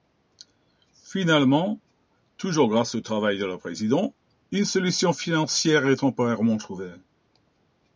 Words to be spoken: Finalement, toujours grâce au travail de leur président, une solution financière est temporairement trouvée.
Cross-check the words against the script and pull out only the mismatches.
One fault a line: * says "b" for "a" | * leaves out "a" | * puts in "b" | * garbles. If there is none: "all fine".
all fine